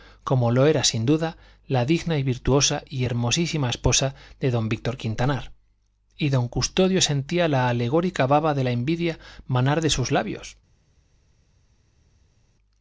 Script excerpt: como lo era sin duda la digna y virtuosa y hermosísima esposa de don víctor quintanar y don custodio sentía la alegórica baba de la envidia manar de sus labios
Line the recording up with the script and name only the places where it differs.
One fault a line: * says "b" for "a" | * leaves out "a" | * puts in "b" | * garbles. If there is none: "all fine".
all fine